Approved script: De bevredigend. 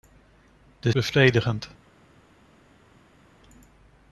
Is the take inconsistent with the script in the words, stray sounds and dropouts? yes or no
no